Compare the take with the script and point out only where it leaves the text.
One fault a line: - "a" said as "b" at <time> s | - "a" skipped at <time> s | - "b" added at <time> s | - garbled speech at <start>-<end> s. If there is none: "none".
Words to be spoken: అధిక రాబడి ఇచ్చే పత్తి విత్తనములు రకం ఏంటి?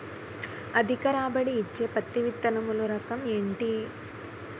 none